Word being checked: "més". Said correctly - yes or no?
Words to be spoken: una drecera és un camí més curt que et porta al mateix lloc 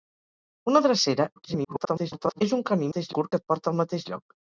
no